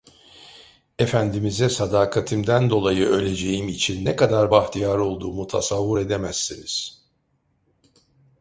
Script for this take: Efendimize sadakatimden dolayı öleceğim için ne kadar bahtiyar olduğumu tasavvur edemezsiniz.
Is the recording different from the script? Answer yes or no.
no